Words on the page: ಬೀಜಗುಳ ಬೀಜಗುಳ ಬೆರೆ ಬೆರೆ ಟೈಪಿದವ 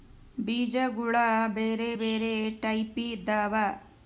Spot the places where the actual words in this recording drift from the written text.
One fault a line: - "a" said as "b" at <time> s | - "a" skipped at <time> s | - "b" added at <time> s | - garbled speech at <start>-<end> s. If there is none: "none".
- "ಬೀಜಗುಳ" skipped at 1.1 s